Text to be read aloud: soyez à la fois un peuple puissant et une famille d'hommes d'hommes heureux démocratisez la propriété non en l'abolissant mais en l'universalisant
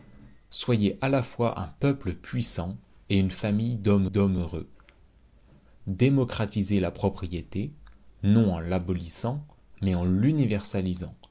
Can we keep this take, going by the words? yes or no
yes